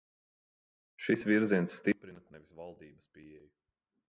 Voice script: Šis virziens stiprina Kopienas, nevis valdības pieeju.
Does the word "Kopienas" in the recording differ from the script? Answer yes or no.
yes